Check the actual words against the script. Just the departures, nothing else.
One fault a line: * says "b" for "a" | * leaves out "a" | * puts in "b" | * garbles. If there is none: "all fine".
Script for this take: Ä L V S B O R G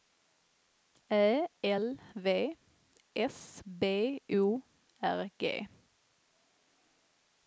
all fine